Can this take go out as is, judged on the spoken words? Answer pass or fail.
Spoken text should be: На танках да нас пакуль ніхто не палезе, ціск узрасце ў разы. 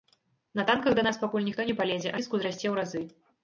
pass